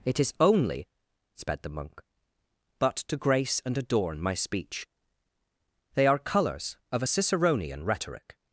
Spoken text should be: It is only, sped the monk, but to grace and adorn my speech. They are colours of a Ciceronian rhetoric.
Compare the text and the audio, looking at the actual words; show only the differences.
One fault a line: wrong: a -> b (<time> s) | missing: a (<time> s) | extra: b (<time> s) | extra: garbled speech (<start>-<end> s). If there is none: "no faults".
no faults